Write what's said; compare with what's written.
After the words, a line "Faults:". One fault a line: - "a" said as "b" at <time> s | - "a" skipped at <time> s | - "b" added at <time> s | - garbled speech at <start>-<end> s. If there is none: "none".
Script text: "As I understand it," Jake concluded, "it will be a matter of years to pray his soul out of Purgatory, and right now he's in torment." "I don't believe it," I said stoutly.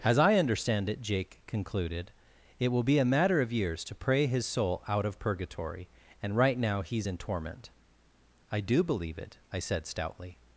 "As I understand it," Jake concluded, "it will be a matter of years to pray his soul out of Purgatory, and right now he's in torment." "I do believe it," I said stoutly.
Faults:
- "don't" said as "do" at 8.6 s